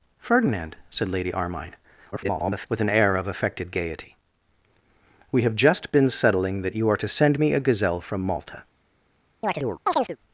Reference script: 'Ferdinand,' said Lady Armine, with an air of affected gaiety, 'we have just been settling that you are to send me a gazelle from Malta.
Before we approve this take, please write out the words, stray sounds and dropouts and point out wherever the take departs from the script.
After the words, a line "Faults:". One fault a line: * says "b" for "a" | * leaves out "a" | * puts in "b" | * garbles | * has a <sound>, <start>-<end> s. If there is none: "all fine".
'Ferdinand,' said Lady Armine, [garbled] with an air of affected gaiety, 'we have just been settling that you are to send me a gazelle from Malta.
Faults:
* garbles
* has a chirp, 9.4-10.2 s